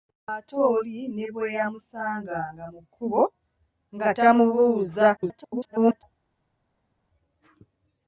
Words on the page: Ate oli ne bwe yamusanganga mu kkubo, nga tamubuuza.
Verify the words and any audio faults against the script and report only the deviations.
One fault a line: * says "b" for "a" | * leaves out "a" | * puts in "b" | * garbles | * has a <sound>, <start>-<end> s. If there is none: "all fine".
* garbles